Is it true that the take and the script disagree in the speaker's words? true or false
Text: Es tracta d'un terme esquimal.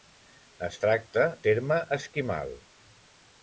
true